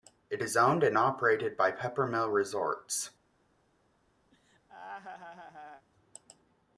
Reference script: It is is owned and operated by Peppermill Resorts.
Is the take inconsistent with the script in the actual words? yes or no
yes